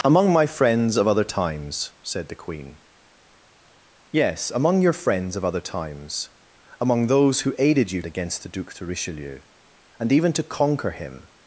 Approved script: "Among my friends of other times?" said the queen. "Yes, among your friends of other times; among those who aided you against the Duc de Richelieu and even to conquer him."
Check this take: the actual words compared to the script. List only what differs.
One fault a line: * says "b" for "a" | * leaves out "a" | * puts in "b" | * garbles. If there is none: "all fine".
all fine